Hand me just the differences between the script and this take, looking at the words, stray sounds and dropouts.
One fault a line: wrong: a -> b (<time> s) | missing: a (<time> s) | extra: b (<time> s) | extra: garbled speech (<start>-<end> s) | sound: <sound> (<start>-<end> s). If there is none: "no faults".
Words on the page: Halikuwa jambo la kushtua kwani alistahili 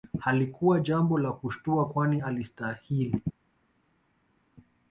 no faults